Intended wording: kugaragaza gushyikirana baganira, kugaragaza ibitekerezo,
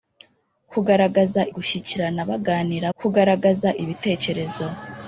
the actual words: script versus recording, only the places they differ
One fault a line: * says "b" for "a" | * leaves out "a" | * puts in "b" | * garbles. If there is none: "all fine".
all fine